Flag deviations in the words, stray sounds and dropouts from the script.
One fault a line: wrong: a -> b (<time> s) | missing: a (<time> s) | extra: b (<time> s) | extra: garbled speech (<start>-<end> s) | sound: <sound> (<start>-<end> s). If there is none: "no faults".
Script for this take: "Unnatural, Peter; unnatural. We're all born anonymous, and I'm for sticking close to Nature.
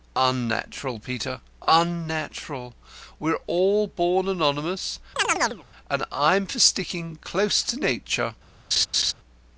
sound: chirp (5.2-5.6 s)
sound: laugh (8.7-9.1 s)